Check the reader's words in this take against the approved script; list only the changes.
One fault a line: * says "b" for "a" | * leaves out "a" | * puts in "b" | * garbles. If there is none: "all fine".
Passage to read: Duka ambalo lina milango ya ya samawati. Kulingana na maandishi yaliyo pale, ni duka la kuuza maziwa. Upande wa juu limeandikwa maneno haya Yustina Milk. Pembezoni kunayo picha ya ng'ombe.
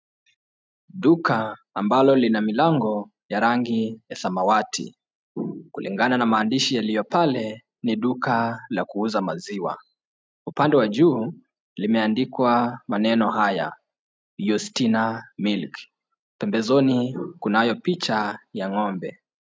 * puts in "rangi"